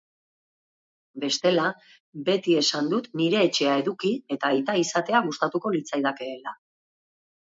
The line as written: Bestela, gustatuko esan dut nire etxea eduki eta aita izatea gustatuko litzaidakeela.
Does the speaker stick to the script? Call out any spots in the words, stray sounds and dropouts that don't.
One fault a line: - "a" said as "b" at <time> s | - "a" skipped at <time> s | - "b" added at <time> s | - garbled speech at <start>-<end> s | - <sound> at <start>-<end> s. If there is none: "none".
- "gustatuko" said as "beti" at 2.3 s